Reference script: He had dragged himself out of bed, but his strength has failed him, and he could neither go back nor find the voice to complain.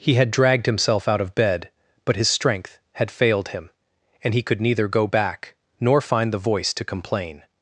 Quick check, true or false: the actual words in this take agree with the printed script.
false